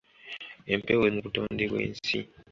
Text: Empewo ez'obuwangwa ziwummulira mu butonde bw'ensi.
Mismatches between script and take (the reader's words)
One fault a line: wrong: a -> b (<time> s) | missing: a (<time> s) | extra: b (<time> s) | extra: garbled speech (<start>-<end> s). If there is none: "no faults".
missing: ez'obuwangwa ziwummulira (1.0 s)